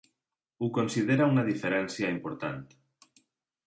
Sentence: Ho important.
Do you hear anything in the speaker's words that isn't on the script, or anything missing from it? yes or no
yes